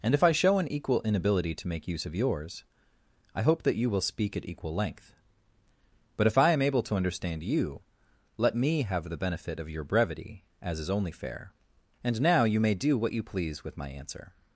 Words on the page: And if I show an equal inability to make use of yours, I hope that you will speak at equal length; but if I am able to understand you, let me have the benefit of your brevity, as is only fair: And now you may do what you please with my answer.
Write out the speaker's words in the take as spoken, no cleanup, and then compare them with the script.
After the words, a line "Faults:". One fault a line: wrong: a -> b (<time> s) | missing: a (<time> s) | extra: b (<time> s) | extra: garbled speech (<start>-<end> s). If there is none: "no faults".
And if I show an equal inability to make use of yours, I hope that you will speak at equal length; but if I am able to understand you, let me have the benefit of your brevity, as is only fair: And now you may do what you please with my answer.
Faults:
no faults